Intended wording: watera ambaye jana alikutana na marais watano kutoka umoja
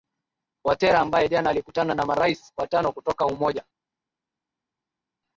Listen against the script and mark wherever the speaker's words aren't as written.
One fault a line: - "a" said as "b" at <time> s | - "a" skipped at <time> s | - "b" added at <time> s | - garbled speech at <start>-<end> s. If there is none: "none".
none